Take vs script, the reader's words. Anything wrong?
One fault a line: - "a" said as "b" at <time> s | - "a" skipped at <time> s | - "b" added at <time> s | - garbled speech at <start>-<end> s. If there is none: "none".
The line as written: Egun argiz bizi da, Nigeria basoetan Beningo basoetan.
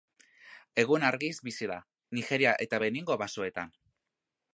- "basoetan" said as "eta" at 2.7 s